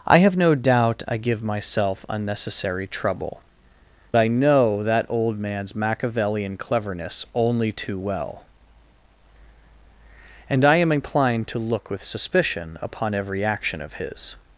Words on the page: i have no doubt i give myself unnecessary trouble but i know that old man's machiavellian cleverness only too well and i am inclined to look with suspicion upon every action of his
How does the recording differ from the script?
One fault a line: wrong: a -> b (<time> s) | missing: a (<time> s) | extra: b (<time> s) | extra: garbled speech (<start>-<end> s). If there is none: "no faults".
missing: but (3.4 s)